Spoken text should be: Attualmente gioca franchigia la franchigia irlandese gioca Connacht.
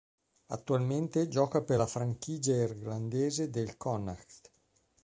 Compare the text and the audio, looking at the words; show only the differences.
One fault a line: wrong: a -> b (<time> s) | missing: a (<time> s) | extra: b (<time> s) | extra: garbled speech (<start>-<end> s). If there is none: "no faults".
wrong: franchigia -> per (1.6 s)
wrong: gioca -> del (3.5 s)